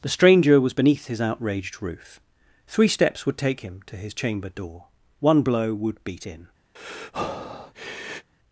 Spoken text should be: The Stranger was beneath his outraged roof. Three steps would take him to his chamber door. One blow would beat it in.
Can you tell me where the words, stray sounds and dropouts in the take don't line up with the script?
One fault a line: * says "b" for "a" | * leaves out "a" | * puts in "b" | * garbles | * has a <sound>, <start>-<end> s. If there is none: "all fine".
* leaves out "it"
* has a breath, 6.8-8.3 s